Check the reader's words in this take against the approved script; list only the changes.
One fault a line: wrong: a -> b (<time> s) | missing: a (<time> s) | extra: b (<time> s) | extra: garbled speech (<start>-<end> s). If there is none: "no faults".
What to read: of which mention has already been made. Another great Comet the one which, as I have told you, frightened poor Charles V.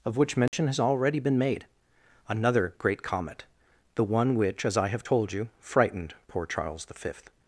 no faults